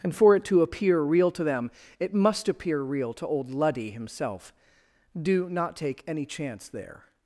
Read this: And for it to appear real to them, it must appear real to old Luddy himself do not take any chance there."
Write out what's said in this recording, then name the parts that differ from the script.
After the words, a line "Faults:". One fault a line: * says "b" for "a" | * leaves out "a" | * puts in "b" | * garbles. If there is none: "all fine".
And for it to appear real to them, it must appear real to old Luddy himself do not take any chance there."
Faults:
all fine